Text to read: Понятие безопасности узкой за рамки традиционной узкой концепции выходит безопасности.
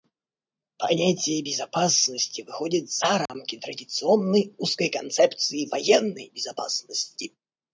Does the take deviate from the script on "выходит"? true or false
true